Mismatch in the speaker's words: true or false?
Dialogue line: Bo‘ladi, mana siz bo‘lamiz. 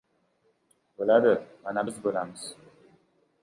true